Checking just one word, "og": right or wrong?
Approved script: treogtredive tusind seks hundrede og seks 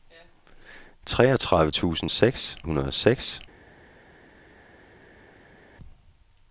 right